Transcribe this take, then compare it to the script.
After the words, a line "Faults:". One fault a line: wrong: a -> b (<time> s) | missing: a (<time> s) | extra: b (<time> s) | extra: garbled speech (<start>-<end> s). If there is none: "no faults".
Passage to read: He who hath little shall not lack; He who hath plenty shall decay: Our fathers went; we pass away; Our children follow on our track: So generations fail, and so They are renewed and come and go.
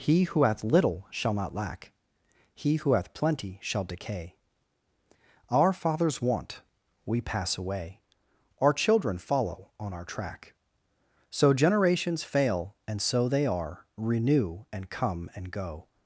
He who hath little shall not lack; He who hath plenty shall decay: Our fathers want; we pass away; Our children follow on our track: So generations fail, and so They are renew and come and go.
Faults:
wrong: went -> want (6.2 s)
wrong: renewed -> renew (13.9 s)